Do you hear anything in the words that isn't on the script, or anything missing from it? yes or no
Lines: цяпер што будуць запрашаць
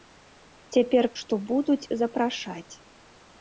no